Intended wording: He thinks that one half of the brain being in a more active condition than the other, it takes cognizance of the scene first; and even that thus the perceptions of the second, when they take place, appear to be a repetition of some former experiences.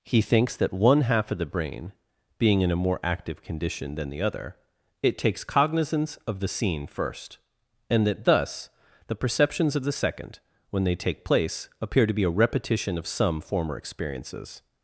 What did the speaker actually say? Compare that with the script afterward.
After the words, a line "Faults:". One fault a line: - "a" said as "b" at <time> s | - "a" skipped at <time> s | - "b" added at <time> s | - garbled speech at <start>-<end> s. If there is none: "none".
He thinks that one half of the brain being in a more active condition than the other, it takes cognizance of the scene first; and that thus the perceptions of the second, when they take place, appear to be a repetition of some former experiences.
Faults:
- "even" skipped at 8.1 s